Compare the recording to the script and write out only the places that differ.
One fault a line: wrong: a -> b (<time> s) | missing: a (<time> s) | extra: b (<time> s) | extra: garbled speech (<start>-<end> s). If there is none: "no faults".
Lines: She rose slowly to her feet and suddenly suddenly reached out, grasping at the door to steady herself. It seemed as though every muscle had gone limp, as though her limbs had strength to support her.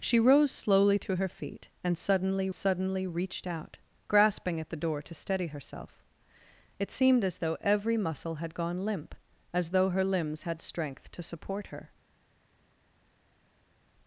no faults